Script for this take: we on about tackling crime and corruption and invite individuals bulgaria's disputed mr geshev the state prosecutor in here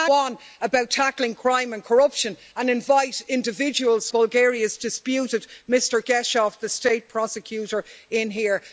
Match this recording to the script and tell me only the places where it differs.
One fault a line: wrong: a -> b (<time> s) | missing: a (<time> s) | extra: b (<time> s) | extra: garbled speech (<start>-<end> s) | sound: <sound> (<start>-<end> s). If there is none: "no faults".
no faults